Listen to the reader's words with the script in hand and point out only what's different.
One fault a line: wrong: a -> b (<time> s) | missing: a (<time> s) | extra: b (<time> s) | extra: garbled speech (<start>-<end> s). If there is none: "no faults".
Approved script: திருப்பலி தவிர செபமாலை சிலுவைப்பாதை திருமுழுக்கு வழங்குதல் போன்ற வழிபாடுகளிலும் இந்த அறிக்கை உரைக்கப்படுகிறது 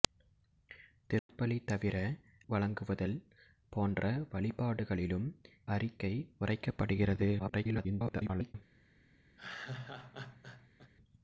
missing: செபமாலை சிலுவைப்பாதை திருமுழுக்கு (2.0 s)
missing: இந்த (5.3 s)
extra: garbled speech (7.4-8.5 s)